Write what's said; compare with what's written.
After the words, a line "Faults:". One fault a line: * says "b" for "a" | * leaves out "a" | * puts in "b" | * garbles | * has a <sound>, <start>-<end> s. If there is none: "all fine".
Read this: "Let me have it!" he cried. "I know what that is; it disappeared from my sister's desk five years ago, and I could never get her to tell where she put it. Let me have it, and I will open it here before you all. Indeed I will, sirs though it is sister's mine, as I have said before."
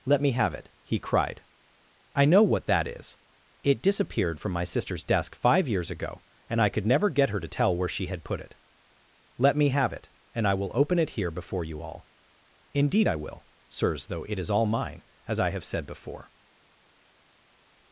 "Let me have it!" he cried. "I know what that is; it disappeared from my sister's desk five years ago, and I could never get her to tell where she had put it. Let me have it, and I will open it here before you all. Indeed I will, sirs though it is all mine, as I have said before."
Faults:
* puts in "had"
* says "all" for "sister's"